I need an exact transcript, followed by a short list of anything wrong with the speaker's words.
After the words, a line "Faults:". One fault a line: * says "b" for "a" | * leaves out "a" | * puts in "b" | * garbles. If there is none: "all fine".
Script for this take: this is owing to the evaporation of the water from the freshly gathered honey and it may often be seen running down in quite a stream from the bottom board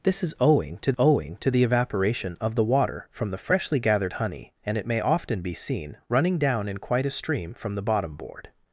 this is owing to owing to the evaporation of the water from the freshly gathered honey and it may often be seen running down in quite a stream from the bottom board
Faults:
* puts in "owing to"